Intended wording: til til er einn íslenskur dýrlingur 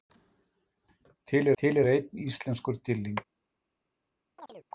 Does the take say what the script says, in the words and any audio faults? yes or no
no